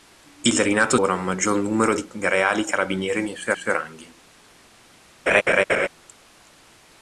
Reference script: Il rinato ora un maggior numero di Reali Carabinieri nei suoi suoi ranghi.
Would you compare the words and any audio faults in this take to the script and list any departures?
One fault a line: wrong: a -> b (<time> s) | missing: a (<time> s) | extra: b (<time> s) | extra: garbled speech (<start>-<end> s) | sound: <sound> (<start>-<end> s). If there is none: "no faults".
sound: laugh (5.3-5.9 s)